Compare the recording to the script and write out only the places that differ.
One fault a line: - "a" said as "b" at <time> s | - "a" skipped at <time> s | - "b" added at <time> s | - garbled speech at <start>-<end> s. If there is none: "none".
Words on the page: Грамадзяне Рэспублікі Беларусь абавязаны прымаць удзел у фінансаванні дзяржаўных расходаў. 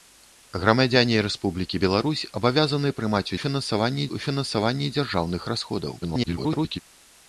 - "удзел" said as "фінансаванні" at 3.4 s
- garbled speech at 6.0-6.8 s